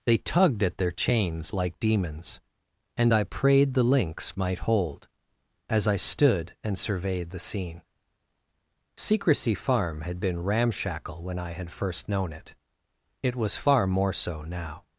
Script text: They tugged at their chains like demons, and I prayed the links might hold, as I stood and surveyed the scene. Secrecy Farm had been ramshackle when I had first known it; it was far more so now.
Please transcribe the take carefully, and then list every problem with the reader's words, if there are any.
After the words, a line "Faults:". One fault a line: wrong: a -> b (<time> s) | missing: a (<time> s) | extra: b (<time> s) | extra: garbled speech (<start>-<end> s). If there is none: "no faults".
They tugged at their chains like demons, and I prayed the links might hold, as I stood and surveyed the scene. Secrecy Farm had been ramshackle when I had first known it; it was far more so now.
Faults:
no faults